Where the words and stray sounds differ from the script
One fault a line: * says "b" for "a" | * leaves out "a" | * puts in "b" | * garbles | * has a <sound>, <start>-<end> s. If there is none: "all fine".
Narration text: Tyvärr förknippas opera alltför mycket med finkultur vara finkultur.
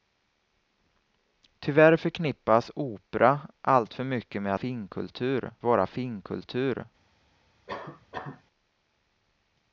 * has a cough, 7.7-8.4 s